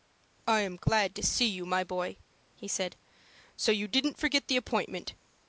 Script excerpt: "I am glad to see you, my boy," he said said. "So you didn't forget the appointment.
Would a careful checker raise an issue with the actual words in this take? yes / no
yes